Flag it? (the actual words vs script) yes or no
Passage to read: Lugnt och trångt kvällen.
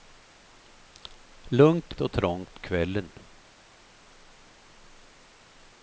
no